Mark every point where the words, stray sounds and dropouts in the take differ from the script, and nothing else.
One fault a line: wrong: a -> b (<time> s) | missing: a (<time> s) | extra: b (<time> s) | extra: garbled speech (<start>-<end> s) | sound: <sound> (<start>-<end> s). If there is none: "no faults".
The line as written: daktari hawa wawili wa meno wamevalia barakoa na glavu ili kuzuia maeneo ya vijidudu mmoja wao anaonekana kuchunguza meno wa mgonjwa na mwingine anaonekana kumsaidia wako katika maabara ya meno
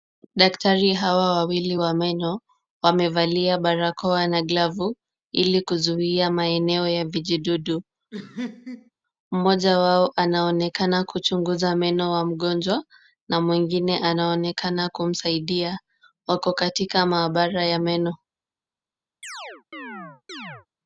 sound: laugh (8.1-8.9 s)
sound: chirp (19.2-20.7 s)